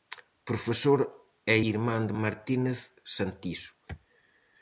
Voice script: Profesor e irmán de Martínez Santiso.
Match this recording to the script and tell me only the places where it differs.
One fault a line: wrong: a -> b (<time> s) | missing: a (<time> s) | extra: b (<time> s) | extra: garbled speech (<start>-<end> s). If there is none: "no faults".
no faults